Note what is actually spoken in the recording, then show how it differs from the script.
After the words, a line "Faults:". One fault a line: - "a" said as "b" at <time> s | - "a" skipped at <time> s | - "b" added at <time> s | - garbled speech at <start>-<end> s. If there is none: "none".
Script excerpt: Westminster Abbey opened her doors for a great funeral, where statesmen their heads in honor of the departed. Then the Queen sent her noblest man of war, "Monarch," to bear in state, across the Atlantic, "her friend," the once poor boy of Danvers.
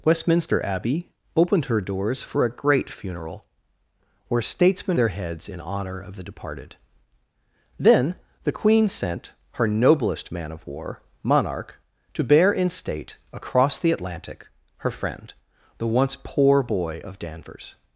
Westminster Abbey opened her doors for a great funeral, where statesmen their heads in honor of the departed. Then the Queen sent her noblest man of war, "Monarch," to bear in state, across the Atlantic, "her friend," the once poor boy of Danvers.
Faults:
none